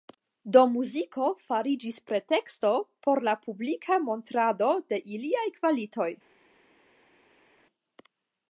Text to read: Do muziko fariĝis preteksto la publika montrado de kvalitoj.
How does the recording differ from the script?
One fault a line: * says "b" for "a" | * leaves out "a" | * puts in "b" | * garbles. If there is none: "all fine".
* puts in "por"
* puts in "iliaj"